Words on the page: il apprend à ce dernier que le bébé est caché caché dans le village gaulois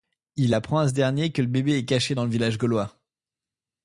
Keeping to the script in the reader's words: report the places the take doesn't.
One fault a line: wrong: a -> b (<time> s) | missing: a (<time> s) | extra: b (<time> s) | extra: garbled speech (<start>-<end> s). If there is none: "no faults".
missing: caché (2.1 s)